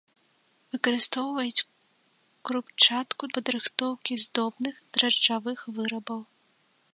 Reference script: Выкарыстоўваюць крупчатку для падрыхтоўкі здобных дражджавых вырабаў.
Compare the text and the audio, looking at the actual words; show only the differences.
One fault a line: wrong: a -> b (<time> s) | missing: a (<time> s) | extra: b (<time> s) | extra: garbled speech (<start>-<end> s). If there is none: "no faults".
missing: для (3.2 s)